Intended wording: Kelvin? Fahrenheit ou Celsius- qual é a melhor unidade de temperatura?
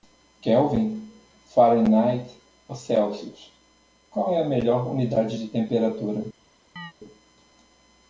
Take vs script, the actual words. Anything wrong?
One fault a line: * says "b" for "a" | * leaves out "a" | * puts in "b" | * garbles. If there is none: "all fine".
all fine